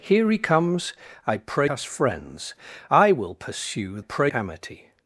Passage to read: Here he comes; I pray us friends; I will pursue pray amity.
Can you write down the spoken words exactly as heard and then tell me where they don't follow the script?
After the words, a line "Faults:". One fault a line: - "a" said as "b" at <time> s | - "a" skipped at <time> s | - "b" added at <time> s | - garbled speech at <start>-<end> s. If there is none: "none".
Here he comes; I pray us friends; I will pursue pray amity.
Faults:
none